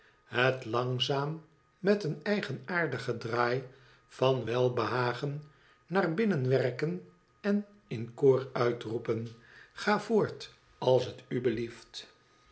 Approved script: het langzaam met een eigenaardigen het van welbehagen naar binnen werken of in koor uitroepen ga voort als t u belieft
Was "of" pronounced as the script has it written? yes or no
no